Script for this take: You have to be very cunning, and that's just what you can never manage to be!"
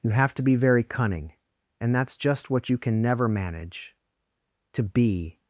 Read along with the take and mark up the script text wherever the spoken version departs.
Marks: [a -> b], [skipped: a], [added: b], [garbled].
You have to be very cunning, and that's just what you can never manage to be!"